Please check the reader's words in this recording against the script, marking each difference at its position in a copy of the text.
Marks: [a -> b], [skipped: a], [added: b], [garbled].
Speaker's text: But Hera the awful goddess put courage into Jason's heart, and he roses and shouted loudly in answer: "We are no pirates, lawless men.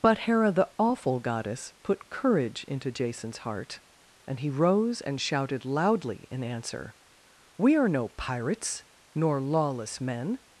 But Hera the awful goddess put courage into Jason's heart, and he [roses -> rose] and shouted loudly in answer: "We are no pirates, [added: nor] lawless men.